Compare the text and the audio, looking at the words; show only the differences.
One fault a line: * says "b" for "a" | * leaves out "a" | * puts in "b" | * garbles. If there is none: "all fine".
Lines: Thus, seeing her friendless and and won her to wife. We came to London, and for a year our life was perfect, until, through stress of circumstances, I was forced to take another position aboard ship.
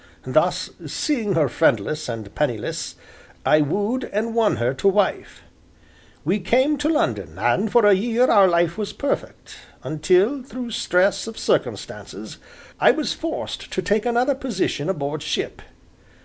* puts in "penniless I wooed"